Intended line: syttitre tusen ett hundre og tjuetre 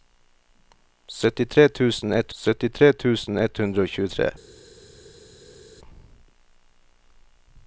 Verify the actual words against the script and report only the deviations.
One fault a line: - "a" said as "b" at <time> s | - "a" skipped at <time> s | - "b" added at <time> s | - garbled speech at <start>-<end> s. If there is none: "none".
- "syttitre tusen ett" added at 2.4 s